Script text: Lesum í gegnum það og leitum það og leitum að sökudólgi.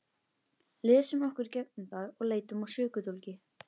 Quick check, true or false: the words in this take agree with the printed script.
false